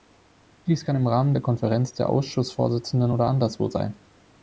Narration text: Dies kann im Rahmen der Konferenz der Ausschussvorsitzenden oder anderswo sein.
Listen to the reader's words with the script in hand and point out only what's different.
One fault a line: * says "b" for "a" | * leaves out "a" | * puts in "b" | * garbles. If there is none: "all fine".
all fine